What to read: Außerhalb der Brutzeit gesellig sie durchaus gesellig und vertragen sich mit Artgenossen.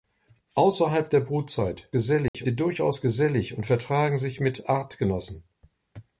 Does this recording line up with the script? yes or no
yes